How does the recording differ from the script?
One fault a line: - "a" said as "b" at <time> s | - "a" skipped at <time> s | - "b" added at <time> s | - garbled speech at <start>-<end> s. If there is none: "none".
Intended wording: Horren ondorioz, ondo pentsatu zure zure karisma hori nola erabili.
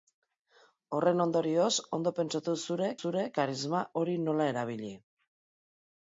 none